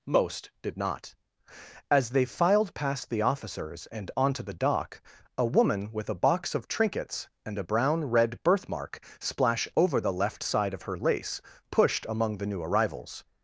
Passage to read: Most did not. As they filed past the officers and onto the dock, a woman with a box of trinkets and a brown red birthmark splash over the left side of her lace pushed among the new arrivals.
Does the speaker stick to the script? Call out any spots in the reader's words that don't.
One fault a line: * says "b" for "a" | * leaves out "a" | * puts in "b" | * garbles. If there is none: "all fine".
all fine